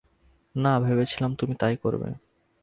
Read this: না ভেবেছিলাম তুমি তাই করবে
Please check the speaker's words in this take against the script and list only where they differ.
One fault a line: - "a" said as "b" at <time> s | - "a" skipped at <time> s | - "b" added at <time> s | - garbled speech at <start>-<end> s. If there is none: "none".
none